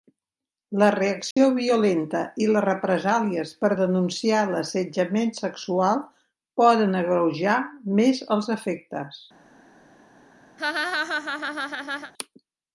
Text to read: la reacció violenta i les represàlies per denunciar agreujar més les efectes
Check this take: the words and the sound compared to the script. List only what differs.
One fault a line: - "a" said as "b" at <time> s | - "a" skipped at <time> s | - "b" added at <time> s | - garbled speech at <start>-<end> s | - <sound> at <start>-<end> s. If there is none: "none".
- dropout at 1.3-1.4 s
- "l'assetjament sexual poden" added at 4.5 s
- "les" said as "els" at 8.4 s
- laugh at 10.6-12.1 s